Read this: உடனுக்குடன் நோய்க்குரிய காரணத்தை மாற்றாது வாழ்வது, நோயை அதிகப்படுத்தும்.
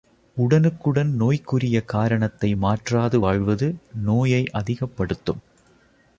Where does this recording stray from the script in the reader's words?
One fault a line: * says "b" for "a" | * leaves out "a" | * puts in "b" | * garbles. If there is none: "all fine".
all fine